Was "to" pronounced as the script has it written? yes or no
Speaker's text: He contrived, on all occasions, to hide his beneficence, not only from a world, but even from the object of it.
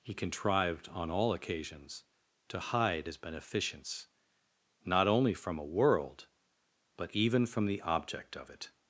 yes